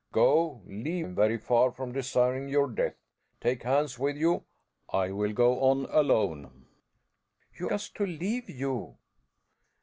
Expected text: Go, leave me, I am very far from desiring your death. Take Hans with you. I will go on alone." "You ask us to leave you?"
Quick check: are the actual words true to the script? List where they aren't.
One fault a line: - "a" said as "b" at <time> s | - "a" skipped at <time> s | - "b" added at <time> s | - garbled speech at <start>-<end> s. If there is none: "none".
- "me I" skipped at 1.1 s
- "ask" skipped at 7.7 s